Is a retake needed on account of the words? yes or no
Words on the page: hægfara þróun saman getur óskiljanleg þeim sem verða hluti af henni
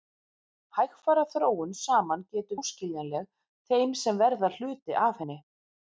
no